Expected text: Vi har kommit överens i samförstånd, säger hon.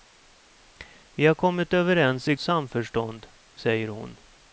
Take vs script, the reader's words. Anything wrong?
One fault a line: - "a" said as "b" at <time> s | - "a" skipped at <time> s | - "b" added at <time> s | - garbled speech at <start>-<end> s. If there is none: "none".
none